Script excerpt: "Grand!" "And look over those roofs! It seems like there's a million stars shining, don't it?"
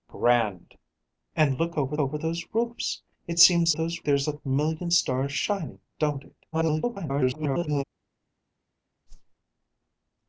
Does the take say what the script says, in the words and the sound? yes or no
no